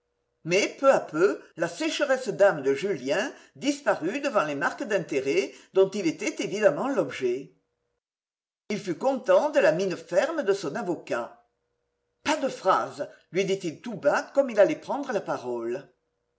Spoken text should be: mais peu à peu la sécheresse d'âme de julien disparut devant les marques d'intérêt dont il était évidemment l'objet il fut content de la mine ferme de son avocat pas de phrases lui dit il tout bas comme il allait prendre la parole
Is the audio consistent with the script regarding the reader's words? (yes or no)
yes